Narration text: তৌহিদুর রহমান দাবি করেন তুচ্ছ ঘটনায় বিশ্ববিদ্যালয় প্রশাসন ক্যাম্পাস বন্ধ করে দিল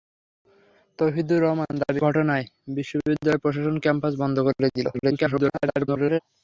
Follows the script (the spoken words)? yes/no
no